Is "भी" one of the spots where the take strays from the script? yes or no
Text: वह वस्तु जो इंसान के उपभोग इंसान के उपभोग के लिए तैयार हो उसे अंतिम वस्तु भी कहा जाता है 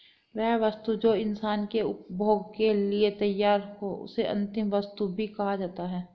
no